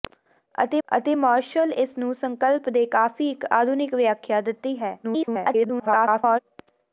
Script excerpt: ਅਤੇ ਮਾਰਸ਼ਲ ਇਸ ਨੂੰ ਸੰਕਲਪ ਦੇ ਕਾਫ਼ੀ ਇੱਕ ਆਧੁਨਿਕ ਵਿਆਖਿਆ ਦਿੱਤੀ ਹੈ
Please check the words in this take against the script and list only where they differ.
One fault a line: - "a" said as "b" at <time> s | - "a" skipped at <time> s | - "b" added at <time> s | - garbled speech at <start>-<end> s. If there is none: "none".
- "ਅਤੇ" added at 0.9 s
- garbled speech at 5.0-6.4 s